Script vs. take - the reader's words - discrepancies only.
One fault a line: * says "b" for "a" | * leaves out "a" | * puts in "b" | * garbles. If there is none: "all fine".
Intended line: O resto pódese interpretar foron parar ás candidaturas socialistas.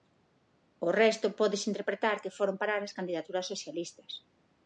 * puts in "que"